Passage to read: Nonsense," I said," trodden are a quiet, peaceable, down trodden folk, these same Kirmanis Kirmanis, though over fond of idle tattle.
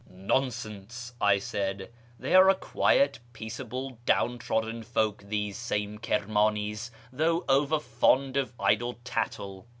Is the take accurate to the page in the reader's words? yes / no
no